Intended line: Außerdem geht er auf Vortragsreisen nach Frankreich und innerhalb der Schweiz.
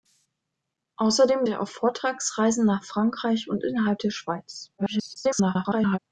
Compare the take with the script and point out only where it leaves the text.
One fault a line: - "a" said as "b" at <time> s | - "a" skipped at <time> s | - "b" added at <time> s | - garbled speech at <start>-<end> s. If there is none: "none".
- "geht" skipped at 1.4 s
- garbled speech at 4.8-6.0 s